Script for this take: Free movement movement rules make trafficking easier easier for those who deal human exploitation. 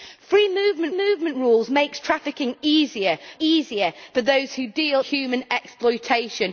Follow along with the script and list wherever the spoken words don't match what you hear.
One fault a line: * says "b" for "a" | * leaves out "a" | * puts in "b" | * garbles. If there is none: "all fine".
all fine